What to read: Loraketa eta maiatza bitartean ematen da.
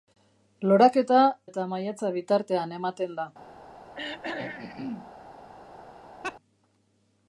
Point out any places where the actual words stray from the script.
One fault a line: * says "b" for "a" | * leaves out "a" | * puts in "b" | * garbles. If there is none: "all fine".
all fine